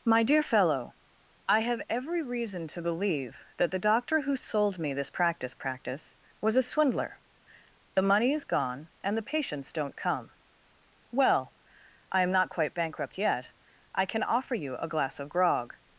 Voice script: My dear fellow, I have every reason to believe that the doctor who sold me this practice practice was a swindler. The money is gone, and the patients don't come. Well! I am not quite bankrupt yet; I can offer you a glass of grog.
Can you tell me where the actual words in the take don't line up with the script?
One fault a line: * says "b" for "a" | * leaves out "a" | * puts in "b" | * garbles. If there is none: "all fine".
all fine